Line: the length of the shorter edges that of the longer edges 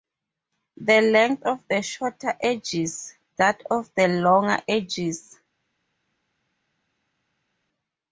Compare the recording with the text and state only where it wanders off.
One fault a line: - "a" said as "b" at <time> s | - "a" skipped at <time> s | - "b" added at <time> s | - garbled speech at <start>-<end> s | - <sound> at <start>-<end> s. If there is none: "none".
none